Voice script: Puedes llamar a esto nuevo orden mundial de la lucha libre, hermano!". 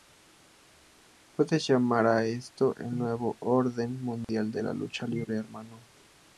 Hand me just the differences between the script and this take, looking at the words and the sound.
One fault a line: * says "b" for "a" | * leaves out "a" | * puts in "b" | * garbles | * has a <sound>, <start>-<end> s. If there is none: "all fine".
* puts in "el"
* has a dropout, 4.2-4.3 s